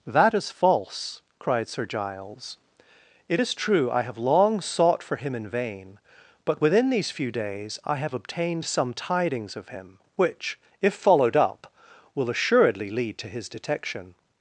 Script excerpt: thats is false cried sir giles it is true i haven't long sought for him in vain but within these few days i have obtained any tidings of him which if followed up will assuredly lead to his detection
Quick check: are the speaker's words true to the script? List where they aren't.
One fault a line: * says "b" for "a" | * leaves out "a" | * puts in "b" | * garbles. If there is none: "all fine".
* says "that" for "thats"
* says "have" for "haven't"
* says "some" for "any"